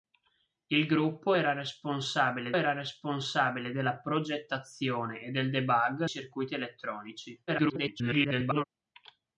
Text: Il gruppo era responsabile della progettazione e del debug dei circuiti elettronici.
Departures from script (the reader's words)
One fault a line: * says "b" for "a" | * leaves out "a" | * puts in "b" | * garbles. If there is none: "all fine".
* puts in "era responsabile"
* leaves out "dei"
* garbles